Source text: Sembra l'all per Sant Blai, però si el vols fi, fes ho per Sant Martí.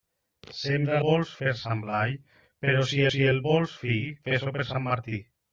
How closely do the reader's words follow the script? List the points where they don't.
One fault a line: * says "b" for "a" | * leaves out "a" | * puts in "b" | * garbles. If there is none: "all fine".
* says "vols" for "l'all"
* puts in "si"